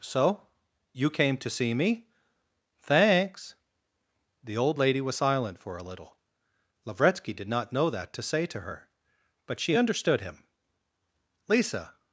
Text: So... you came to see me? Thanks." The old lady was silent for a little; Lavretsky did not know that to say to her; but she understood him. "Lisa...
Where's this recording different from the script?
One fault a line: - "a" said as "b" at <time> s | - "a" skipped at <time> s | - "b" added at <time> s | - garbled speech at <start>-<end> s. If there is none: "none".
none